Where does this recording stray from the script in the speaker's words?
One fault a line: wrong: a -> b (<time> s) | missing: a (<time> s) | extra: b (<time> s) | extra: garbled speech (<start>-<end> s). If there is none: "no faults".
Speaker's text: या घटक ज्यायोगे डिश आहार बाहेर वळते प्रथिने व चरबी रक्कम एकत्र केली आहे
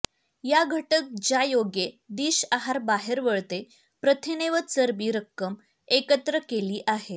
no faults